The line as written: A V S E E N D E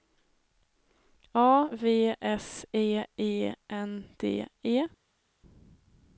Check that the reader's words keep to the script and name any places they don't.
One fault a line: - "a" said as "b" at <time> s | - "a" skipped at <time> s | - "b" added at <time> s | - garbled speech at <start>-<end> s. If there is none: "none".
none